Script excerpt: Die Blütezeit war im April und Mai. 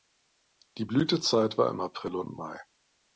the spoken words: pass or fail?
pass